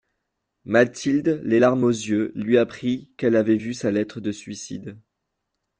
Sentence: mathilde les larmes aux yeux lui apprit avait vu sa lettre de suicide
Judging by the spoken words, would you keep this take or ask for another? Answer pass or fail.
fail